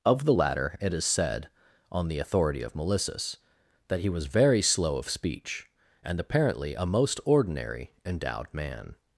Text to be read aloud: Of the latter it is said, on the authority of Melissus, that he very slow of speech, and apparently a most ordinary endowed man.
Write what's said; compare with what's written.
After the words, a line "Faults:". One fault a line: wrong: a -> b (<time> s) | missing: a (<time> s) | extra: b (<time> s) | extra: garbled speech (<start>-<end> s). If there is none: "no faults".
Of the latter it is said, on the authority of Melissus, that he was very slow of speech, and apparently a most ordinary endowed man.
Faults:
extra: was (4.1 s)